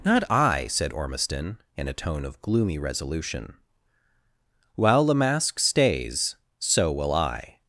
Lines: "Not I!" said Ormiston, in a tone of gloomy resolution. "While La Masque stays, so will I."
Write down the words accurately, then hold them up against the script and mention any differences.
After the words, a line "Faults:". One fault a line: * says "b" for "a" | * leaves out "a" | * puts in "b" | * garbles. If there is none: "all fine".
"Not I!" said Ormiston, in a tone of gloomy resolution. "While La Masque stays, so will I."
Faults:
all fine